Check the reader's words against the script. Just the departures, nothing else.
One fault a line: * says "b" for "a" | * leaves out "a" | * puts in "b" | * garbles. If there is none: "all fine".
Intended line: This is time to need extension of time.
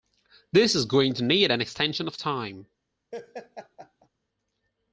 * says "going" for "time"
* puts in "an"